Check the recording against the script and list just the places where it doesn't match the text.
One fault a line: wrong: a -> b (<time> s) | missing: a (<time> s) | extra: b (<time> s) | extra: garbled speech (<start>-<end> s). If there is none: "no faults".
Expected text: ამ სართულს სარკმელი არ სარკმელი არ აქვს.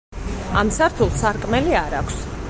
missing: სარკმელი არ (2.0 s)